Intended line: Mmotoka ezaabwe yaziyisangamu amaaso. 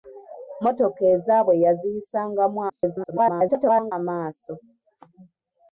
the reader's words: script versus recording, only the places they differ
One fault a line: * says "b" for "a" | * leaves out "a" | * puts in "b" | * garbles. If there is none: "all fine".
* garbles